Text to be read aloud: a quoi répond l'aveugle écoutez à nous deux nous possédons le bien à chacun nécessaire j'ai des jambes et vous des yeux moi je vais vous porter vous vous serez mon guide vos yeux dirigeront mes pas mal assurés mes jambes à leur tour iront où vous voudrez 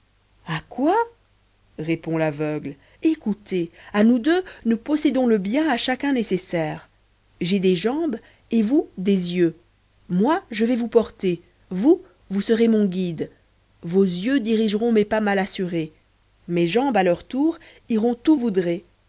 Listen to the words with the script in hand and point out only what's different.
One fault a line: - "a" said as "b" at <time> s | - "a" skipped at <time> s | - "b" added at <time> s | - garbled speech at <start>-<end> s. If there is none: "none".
- "vous" skipped at 18.4 s